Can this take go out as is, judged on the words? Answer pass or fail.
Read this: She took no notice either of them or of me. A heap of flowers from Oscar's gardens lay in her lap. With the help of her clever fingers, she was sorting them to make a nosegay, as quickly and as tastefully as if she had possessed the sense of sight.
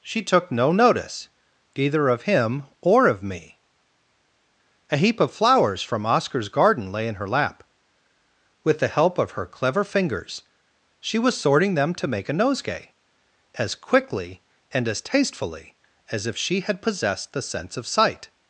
fail